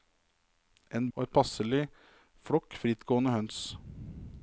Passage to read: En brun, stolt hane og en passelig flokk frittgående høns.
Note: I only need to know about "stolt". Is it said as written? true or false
false